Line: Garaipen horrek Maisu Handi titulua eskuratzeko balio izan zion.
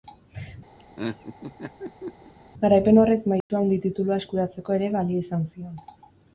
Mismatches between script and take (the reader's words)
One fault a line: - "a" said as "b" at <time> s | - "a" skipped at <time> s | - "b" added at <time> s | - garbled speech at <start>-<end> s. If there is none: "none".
- "ere" added at 4.8 s